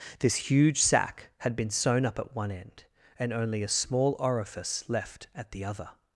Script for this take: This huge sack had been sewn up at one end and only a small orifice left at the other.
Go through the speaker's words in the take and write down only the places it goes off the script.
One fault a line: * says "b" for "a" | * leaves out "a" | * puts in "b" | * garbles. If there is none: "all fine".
all fine